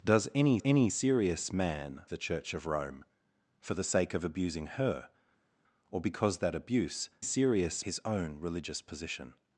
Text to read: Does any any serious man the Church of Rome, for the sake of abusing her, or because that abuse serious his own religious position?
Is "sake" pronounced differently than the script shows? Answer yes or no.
no